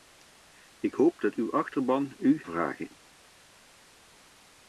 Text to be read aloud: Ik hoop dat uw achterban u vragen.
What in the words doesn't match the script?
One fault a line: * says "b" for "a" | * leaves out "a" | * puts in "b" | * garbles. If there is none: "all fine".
all fine